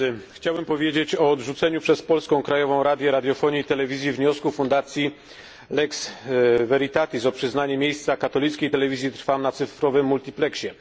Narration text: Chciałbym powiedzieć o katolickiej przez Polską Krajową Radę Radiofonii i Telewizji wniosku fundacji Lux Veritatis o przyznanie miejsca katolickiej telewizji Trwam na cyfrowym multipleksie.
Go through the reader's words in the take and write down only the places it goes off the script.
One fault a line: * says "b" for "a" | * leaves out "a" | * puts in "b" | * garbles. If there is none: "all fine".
* says "odrzuceniu" for "katolickiej"